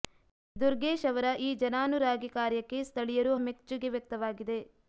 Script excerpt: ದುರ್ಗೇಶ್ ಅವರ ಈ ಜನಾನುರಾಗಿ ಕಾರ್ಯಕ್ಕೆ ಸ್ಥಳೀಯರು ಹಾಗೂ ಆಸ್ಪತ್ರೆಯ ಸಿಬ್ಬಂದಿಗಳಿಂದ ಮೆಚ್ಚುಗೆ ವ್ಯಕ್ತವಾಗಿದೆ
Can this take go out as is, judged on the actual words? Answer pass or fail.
fail